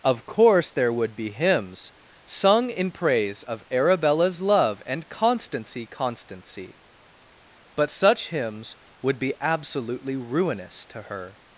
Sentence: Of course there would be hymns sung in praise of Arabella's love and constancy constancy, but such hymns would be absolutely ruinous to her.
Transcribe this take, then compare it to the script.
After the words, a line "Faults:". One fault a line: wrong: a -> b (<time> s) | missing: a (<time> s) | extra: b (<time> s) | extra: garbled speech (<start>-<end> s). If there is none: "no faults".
Of course there would be hymns sung in praise of Arabella's love and constancy constancy, but such hymns would be absolutely ruinous to her.
Faults:
no faults